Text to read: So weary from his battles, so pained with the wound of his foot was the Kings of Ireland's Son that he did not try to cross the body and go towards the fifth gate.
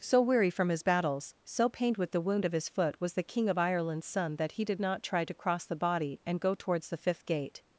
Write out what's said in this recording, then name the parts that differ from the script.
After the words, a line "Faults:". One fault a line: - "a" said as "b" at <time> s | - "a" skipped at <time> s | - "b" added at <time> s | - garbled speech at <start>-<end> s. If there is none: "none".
So weary from his battles, so pained with the wound of his foot was the King of Ireland's Son that he did not try to cross the body and go towards the fifth gate.
Faults:
- "Kings" said as "King" at 3.2 s